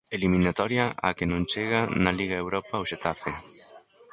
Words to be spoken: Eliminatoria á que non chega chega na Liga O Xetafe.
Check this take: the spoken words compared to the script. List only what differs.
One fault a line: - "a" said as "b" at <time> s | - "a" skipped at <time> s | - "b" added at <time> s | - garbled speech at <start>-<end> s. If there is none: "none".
- "chega" skipped at 1.8 s
- "Europa" added at 2.4 s